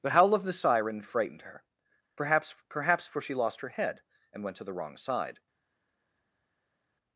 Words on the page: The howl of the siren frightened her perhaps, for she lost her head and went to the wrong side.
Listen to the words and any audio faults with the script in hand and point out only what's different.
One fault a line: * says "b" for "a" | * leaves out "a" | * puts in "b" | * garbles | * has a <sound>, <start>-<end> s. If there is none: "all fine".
* puts in "perhaps"